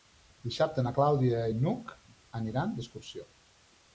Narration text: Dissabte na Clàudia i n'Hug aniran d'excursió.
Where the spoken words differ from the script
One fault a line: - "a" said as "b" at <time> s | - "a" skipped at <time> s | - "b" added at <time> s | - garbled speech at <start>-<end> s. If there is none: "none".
none